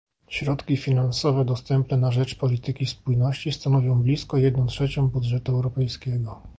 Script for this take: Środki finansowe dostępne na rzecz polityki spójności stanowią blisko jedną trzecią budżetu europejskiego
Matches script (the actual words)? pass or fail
pass